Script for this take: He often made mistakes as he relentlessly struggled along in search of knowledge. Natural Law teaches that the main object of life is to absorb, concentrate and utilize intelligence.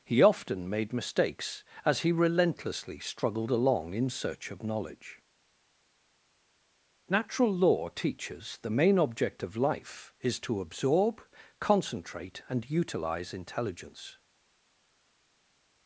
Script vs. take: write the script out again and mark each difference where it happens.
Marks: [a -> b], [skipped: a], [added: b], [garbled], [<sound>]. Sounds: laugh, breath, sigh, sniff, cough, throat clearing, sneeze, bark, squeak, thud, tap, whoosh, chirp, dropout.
He often made mistakes as he relentlessly struggled along in search of knowledge. Natural Law teaches [skipped: that] the main object of life is to absorb, concentrate and utilize intelligence.